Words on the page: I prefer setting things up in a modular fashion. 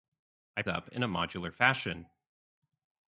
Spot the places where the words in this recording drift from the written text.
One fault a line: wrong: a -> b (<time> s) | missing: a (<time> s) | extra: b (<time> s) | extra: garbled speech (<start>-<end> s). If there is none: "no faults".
missing: prefer setting things (0.6 s)